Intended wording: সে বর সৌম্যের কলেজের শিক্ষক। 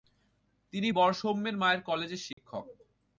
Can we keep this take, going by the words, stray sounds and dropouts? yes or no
no